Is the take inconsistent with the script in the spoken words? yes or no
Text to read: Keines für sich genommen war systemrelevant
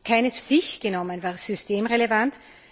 yes